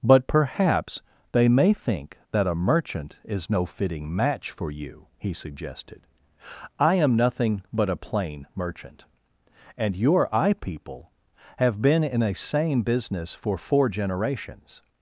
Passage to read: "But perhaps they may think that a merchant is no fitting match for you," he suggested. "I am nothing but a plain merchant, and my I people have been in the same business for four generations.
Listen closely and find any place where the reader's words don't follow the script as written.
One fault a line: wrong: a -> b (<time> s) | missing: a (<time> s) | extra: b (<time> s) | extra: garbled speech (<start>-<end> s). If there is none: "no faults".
wrong: my -> your (9.9 s)
wrong: the -> a (12.2 s)